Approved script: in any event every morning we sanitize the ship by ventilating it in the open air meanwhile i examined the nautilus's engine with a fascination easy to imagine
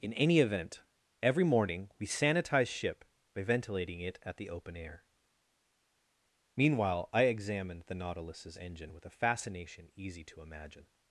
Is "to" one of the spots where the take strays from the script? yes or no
no